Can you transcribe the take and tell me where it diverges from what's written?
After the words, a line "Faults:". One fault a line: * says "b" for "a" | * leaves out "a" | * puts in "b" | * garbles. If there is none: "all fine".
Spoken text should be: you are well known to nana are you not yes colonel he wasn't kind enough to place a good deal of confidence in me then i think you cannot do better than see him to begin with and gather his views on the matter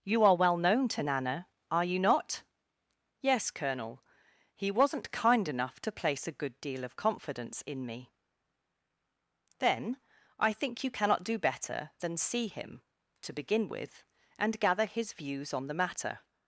you are well known to nana are you not yes colonel he wasn't kind enough to place a good deal of confidence in me then i think you cannot do better than see him to begin with and gather his views on the matter
Faults:
all fine